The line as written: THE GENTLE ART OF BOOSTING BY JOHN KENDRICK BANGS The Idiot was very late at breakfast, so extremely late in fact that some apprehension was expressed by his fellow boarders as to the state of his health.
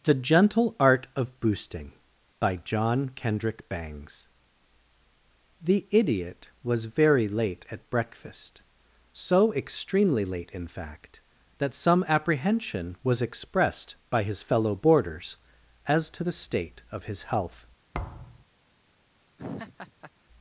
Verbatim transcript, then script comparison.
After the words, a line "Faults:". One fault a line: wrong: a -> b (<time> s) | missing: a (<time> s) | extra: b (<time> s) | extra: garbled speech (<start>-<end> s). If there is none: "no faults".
THE GENTLE ART OF BOOSTING BY JOHN KENDRICK BANGS The Idiot was very late at breakfast, so extremely late in fact that some apprehension was expressed by his fellow boarders as to the state of his health.
Faults:
no faults